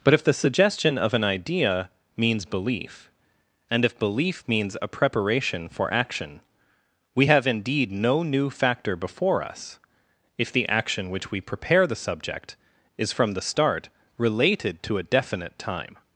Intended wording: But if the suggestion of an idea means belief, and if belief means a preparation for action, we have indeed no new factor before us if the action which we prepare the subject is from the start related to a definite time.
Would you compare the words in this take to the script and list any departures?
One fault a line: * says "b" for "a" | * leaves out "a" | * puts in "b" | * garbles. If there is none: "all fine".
all fine